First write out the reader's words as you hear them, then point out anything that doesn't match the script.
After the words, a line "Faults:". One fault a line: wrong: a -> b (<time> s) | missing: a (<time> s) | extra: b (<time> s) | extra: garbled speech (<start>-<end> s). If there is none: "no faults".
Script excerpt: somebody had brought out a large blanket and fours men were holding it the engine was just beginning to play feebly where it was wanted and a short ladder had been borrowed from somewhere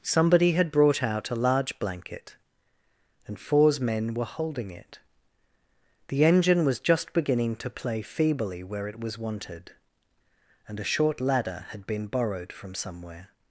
somebody had brought out a large blanket and fours men were holding it the engine was just beginning to play feebly where it was wanted and a short ladder had been borrowed from somewhere
Faults:
no faults